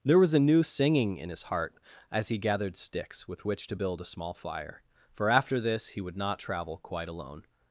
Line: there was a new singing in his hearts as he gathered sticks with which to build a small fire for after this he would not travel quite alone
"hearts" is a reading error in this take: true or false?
true